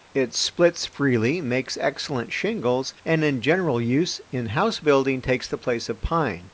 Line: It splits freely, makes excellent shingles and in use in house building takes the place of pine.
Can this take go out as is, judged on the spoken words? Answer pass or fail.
fail